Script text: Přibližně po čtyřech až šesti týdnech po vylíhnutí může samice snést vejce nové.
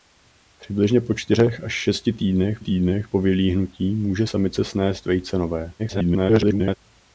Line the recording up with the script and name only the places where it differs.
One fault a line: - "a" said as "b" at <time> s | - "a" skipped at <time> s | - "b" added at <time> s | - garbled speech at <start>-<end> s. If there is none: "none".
- "týdnech" added at 2.6 s
- garbled speech at 5.8-6.8 s